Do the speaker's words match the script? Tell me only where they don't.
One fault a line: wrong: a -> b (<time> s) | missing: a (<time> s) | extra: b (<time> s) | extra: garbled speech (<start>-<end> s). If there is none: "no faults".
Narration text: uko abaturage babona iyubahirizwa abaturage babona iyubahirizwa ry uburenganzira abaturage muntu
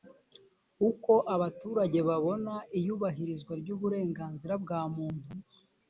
missing: abaturage babona iyubahirizwa (3.5 s)
wrong: abaturage -> bwa (4.6 s)